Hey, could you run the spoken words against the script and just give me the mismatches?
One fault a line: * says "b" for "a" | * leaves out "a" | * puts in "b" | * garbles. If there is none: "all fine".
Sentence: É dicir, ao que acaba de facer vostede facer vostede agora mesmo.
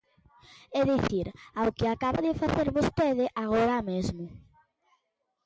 * leaves out "facer vostede"